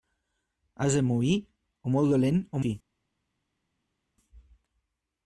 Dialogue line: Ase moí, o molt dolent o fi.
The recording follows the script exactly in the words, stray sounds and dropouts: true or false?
true